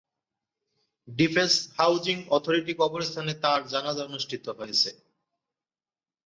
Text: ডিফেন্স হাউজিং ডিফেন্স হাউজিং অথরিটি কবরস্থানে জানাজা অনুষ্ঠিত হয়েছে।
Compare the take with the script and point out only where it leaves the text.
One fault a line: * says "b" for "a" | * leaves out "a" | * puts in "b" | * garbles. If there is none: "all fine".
* leaves out "ডিফেন্স হাউজিং"
* puts in "তাঁর"